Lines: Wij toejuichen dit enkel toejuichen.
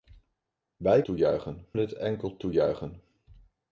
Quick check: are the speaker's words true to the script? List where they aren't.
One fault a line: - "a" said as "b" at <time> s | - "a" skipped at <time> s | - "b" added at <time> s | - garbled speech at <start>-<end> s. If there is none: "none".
none